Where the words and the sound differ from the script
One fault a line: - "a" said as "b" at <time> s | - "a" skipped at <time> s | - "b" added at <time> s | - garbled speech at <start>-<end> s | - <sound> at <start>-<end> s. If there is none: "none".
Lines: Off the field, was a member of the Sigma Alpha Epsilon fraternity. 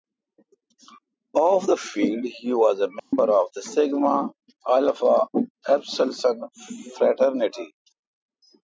- "he" added at 2.2 s
- dropout at 3.0-3.1 s